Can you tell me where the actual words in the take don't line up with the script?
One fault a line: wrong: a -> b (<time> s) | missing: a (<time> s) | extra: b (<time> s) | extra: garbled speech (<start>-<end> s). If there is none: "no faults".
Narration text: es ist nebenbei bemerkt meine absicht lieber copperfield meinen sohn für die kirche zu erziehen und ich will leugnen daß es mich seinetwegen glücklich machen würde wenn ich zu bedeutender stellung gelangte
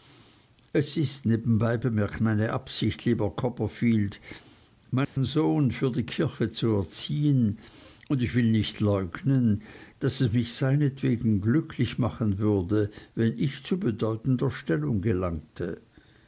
extra: nicht (8.5 s)